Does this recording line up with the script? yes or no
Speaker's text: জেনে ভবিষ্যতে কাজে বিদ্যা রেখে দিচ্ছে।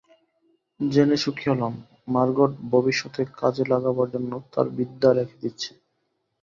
no